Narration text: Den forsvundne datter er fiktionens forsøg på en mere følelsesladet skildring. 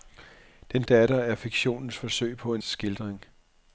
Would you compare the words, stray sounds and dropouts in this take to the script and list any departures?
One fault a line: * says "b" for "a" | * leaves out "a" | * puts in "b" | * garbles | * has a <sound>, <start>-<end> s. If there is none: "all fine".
* leaves out "forsvundne"
* leaves out "mere følelsesladet"